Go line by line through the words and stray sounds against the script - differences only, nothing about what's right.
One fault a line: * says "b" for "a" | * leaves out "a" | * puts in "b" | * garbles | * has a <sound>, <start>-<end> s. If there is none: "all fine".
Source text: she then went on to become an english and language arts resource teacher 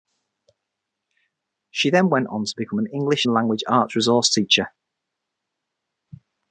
all fine